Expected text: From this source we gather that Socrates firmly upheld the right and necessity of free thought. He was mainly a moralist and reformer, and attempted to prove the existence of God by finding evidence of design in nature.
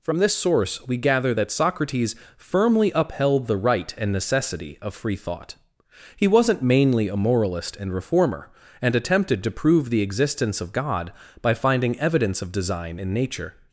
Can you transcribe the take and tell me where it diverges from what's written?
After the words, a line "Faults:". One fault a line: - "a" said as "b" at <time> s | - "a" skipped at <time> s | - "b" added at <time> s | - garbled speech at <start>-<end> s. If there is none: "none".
From this source we gather that Socrates firmly upheld the right and necessity of free thought. He wasn't mainly a moralist and reformer, and attempted to prove the existence of God by finding evidence of design in nature.
Faults:
- "was" said as "wasn't" at 6.3 s